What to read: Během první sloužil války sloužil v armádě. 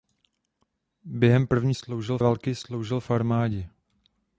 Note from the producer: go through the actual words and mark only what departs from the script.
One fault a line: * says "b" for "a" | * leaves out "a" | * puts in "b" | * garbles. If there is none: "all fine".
all fine